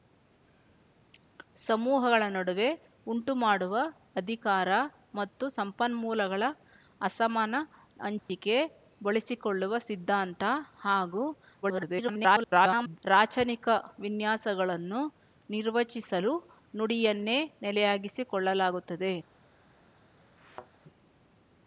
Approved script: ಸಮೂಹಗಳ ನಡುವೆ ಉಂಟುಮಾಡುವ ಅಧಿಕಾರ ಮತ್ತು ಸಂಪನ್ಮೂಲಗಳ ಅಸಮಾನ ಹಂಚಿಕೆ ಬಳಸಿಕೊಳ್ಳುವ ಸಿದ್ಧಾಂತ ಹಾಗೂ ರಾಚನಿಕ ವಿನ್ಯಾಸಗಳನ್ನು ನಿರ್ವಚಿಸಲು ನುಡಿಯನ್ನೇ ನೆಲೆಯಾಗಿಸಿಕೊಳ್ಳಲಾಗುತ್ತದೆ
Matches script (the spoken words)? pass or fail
fail